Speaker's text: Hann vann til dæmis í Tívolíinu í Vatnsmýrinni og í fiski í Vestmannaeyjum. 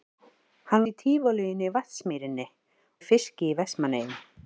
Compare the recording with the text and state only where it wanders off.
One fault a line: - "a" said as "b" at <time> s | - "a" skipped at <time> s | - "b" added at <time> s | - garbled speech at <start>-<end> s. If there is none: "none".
- "vann til dæmis" skipped at 0.8 s
- "og" skipped at 2.5 s